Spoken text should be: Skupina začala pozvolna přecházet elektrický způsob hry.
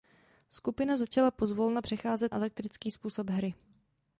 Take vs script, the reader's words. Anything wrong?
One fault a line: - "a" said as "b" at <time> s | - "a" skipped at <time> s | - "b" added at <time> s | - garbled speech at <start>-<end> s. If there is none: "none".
none